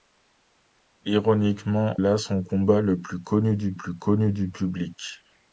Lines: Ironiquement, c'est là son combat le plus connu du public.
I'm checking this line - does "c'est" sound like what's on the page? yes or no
no